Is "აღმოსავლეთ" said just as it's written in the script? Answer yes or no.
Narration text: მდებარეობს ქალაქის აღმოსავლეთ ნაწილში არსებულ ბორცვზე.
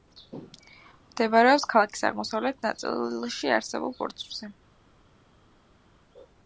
yes